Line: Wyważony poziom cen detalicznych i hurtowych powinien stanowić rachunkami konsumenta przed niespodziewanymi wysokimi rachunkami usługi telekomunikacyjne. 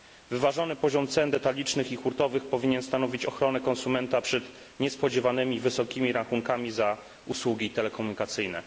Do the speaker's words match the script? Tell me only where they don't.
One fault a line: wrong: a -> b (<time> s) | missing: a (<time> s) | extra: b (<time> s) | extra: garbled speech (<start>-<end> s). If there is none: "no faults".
wrong: rachunkami -> ochronę (3.2 s)
extra: za (6.7 s)